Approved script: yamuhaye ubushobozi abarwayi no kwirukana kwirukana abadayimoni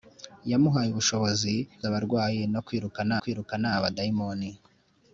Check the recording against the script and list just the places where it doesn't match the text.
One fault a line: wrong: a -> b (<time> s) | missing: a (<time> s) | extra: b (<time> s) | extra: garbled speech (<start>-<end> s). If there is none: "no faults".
no faults